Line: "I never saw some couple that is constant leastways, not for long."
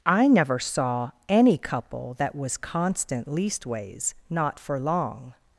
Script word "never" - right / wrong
right